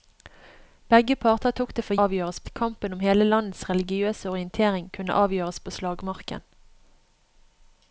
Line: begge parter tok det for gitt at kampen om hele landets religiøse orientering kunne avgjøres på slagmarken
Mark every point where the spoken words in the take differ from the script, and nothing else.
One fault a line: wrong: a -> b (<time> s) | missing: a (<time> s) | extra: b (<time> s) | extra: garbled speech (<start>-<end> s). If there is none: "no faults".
wrong: gitt -> avgjøres (2.0 s)